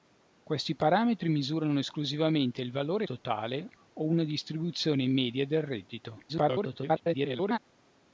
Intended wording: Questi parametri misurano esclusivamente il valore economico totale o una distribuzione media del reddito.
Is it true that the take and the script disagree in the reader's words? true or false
true